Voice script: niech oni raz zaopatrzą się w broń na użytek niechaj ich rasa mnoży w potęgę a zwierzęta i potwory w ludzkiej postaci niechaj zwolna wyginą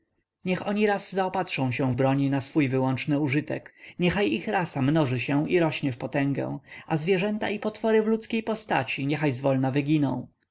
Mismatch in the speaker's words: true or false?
true